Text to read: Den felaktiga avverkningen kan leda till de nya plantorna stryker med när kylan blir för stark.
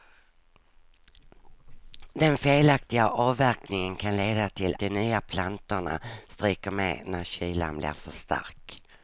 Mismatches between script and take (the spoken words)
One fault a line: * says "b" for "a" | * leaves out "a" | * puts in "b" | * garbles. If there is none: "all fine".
all fine